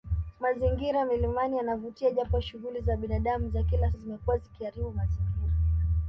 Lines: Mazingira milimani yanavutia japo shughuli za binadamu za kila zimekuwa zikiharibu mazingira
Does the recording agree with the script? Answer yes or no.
yes